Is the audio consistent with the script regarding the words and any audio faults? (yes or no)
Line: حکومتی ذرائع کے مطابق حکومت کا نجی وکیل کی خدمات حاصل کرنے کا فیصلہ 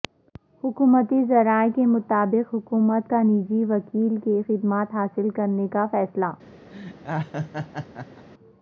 no